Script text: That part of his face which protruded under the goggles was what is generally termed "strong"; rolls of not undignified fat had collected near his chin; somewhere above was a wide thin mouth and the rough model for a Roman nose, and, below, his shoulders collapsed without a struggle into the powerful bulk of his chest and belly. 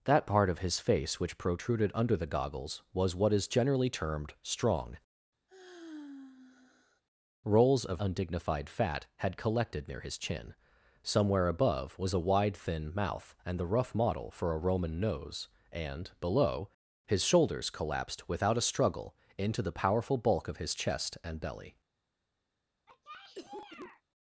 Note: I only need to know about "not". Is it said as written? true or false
false